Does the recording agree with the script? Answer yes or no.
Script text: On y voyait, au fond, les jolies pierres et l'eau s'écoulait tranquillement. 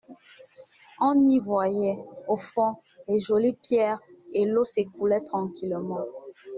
yes